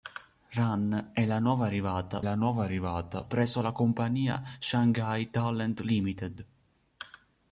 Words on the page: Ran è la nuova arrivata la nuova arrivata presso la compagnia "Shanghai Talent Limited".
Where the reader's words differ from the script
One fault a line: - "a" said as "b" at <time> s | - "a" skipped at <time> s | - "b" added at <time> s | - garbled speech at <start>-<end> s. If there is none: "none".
none